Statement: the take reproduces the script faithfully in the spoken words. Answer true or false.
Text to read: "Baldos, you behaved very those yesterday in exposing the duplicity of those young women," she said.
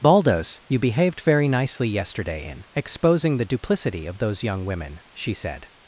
false